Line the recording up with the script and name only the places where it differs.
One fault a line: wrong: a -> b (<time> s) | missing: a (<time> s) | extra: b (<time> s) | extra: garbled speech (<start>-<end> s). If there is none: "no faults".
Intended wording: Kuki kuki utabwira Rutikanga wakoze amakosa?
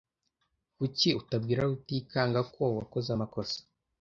missing: kuki (1.1 s)
extra: ko (2.5 s)